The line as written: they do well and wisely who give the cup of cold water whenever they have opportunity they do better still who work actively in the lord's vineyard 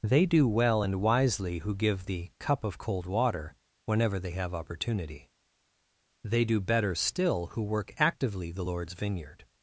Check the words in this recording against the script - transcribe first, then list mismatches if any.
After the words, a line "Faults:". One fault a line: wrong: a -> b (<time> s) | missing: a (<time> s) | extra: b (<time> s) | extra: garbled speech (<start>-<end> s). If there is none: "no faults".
they do well and wisely who give the cup of cold water whenever they have opportunity they do better still who work actively the lord's vineyard
Faults:
missing: in (8.5 s)